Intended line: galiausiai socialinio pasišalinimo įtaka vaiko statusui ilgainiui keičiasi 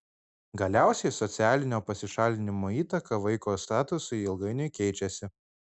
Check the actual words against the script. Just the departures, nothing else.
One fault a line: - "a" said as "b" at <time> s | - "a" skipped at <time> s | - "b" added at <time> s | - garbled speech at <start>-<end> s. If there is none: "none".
none